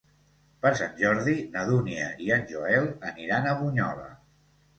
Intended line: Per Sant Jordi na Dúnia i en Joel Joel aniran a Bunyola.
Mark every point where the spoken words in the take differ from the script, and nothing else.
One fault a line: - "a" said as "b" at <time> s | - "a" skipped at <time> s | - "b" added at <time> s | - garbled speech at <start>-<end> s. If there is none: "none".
- "Joel" skipped at 2.9 s